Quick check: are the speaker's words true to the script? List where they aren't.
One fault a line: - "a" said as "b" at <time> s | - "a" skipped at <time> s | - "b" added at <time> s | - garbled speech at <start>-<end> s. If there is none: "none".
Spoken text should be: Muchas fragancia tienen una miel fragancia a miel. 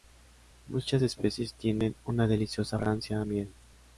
- "fragancia" said as "especies" at 1.0 s
- "miel" said as "deliciosa" at 2.3 s